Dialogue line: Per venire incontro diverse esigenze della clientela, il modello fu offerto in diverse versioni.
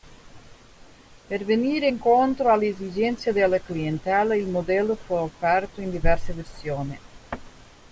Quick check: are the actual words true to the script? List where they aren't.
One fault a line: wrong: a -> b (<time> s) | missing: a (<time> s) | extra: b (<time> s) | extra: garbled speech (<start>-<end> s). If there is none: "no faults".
wrong: diverse -> alle (2.5 s)